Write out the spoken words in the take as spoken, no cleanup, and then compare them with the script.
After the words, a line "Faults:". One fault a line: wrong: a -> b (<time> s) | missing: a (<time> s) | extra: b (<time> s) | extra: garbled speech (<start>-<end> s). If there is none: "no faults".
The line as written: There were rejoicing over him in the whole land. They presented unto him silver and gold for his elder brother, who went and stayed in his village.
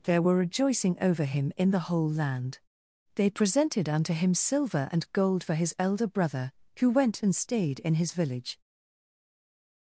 There were rejoicing over him in the whole land. They presented unto him silver and gold for his elder brother, who went and stayed in his village.
Faults:
no faults